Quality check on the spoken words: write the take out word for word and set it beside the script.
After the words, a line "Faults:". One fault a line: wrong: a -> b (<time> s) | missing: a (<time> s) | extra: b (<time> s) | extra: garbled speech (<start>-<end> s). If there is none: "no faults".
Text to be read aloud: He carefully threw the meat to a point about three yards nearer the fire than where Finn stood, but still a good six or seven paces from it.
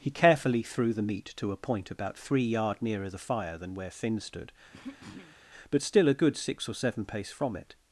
He carefully threw the meat to a point about three yard nearer the fire than where Finn stood, but still a good six or seven pace from it.
Faults:
wrong: yards -> yard (2.4 s)
wrong: paces -> pace (7.0 s)